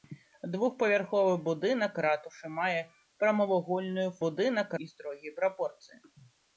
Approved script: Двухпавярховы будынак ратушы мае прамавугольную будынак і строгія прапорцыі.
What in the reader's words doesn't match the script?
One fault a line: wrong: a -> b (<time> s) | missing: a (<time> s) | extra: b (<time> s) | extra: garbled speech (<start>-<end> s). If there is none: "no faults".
no faults